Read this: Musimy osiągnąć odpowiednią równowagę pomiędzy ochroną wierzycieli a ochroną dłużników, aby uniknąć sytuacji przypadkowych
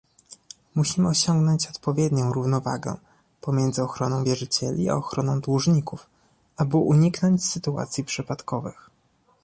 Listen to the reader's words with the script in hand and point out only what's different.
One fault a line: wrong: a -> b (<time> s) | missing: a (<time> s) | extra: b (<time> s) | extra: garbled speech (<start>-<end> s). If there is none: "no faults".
no faults